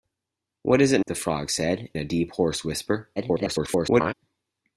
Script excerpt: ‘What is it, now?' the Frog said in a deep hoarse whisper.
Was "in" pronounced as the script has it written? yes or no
no